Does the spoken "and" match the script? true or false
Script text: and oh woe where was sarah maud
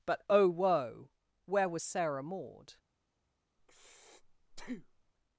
false